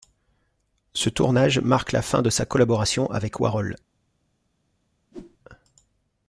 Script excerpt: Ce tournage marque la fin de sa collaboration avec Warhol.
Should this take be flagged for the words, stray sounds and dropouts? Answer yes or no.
yes